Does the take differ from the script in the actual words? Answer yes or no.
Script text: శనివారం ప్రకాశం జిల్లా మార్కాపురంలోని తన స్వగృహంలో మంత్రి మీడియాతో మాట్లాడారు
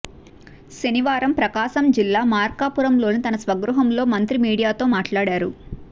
no